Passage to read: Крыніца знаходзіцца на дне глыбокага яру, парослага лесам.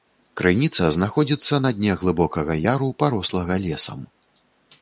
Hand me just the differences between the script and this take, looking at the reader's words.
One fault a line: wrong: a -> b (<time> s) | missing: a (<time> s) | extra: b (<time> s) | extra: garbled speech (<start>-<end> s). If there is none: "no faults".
no faults